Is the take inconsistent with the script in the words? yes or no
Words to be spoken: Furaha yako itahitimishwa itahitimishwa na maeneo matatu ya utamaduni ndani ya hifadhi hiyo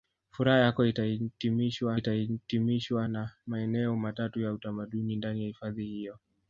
no